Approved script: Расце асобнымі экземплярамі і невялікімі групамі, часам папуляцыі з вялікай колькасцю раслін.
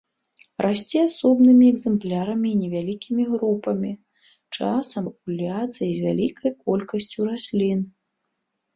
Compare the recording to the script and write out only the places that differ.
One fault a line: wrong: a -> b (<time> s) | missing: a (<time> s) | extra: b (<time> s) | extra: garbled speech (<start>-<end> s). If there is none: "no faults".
no faults